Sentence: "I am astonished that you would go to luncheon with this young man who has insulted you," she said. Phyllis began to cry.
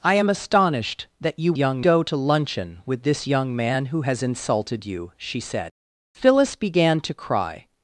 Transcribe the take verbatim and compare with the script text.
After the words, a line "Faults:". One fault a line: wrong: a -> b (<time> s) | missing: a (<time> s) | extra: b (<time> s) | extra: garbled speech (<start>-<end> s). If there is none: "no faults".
"I am astonished that you young go to luncheon with this young man who has insulted you," she said. Phyllis began to cry.
Faults:
wrong: would -> young (1.6 s)